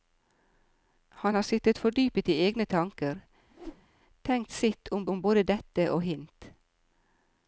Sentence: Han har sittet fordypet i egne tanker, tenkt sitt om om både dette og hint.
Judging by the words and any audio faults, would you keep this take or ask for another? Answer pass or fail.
fail